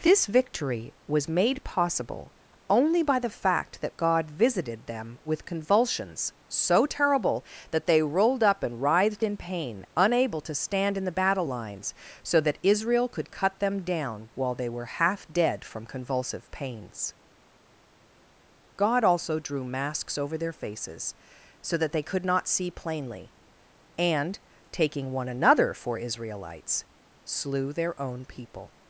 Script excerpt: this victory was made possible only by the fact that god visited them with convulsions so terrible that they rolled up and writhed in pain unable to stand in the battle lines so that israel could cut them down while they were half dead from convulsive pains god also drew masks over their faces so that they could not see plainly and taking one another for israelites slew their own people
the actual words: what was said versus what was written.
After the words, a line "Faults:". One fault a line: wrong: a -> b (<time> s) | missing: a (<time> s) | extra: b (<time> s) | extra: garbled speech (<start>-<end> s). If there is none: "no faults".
this victory was made possible only by the fact that god visited them with convulsions so terrible that they rolled up and writhed in pain unable to stand in the battle lines so that israel could cut them down while they were half dead from convulsive pains god also drew masks over their faces so that they could not see plainly and taking one another for israelites slew their own people
Faults:
no faults